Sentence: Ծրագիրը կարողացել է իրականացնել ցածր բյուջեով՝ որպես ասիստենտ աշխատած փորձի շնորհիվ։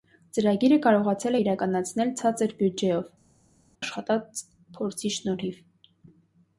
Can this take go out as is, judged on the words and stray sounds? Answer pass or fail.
fail